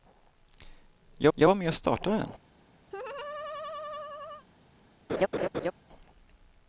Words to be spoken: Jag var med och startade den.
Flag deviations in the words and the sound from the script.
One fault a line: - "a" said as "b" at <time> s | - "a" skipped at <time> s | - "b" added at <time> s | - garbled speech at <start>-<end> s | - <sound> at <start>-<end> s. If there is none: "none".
- "jag" added at 1.3 s
- laugh at 2.9-4.4 s
- laugh at 5.1-5.7 s